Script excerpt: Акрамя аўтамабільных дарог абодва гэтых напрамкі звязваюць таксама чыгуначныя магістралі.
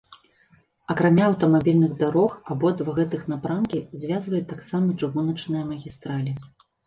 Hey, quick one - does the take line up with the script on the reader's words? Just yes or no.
yes